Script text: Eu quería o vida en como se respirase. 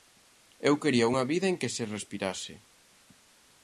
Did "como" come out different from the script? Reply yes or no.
yes